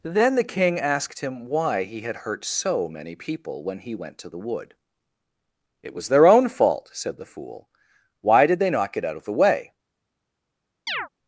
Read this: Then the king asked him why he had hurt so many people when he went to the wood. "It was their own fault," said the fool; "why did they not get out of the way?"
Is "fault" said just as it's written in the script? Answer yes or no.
yes